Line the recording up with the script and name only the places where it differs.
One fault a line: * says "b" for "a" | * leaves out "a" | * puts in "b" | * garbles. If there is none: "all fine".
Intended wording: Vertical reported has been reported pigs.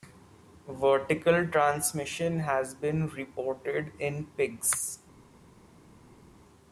* says "transmission" for "reported"
* puts in "in"